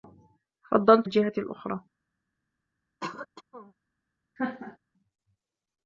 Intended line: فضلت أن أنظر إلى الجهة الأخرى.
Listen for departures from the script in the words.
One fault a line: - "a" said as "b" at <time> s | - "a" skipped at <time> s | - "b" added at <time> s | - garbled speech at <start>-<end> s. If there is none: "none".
- "أن أنظر إلى" skipped at 1.1 s